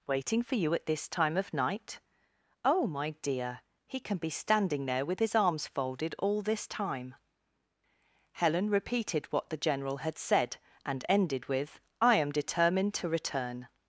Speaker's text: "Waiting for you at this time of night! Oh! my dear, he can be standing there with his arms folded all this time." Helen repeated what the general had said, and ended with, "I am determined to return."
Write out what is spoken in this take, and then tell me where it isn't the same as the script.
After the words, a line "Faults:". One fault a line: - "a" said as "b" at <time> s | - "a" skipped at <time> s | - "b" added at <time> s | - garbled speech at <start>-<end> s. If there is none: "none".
"Waiting for you at this time of night! Oh! my dear, he can be standing there with his arms folded all this time." Helen repeated what the general had said, and ended with, "I am determined to return."
Faults:
none